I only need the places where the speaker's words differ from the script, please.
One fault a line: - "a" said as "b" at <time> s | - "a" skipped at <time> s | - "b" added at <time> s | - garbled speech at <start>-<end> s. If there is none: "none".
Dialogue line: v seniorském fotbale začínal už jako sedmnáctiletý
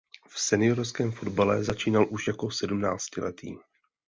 none